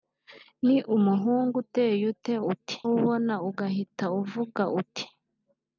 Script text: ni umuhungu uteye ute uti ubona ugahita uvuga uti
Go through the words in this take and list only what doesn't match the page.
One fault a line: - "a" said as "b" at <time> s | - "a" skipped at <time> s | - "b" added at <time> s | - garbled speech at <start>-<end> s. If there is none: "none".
none